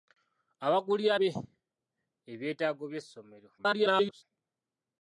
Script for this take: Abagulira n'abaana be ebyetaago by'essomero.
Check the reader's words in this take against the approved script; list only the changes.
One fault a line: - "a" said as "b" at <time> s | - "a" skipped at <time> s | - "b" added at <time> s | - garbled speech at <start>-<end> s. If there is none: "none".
- "n'abaana" skipped at 1.1 s
- garbled speech at 3.6-4.2 s